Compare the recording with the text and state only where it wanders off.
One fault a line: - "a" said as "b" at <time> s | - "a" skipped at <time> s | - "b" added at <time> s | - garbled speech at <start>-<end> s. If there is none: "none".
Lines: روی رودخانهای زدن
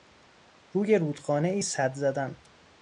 - "سد" added at 1.6 s